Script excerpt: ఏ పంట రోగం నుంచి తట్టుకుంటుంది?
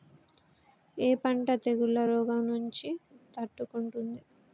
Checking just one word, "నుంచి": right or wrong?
right